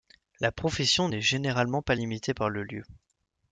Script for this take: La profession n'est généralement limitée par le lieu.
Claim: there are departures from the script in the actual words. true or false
true